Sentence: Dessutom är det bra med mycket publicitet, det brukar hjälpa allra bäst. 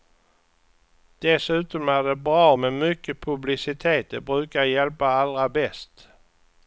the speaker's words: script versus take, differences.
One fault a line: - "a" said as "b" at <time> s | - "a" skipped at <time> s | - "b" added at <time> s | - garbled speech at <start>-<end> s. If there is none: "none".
none